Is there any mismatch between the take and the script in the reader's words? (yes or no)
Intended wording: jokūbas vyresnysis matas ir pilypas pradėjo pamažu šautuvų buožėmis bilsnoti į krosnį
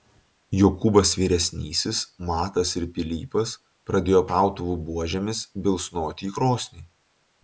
yes